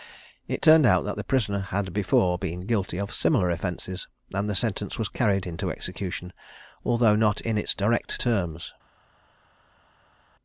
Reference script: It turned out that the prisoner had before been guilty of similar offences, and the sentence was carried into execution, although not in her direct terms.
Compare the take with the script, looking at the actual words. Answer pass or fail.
fail